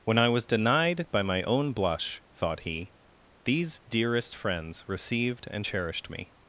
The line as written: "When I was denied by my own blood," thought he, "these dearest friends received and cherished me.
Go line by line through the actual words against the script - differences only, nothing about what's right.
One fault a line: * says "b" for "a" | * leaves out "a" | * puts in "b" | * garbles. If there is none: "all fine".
* says "blush" for "blood"